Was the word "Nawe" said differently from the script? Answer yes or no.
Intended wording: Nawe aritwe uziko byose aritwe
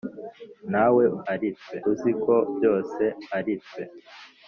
no